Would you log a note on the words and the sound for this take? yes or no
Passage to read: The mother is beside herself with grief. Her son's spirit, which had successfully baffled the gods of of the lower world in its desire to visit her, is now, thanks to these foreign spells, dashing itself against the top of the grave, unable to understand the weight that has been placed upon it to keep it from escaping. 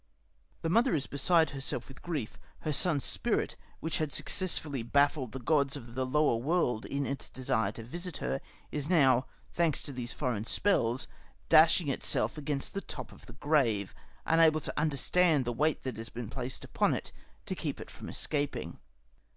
no